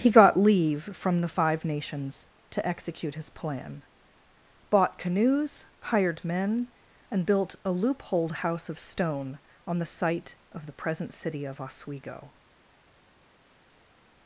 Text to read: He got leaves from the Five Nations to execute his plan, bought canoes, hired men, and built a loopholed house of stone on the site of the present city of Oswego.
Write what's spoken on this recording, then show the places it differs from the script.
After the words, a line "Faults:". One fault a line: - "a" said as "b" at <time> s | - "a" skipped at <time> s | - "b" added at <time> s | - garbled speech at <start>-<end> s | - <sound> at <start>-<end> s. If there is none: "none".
He got leave from the Five Nations to execute his plan, bought canoes, hired men, and built a loopholed house of stone on the site of the present city of Oswego.
Faults:
- "leaves" said as "leave" at 0.3 s